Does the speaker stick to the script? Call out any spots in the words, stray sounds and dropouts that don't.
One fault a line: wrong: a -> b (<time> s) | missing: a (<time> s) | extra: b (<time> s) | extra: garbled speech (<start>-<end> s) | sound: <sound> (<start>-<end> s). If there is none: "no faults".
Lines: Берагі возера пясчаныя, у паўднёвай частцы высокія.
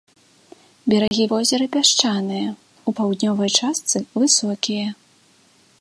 sound: dropout (1.1-1.1 s)